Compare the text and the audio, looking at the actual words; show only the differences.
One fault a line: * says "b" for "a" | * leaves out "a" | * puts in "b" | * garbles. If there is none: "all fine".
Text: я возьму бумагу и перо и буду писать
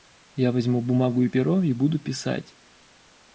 all fine